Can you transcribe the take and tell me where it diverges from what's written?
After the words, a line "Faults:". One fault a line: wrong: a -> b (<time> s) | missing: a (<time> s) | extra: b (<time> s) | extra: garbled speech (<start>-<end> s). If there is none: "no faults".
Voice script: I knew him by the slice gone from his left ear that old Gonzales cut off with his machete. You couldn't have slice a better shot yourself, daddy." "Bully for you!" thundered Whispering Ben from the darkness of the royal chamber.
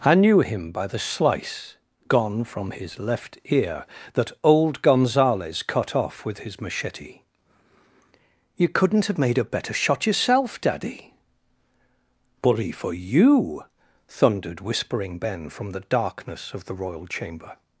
I knew him by the slice gone from his left ear that old Gonzales cut off with his machete. You couldn't have made a better shot yourself, daddy." "Bully for you!" thundered Whispering Ben from the darkness of the royal chamber.
Faults:
wrong: slice -> made (9.2 s)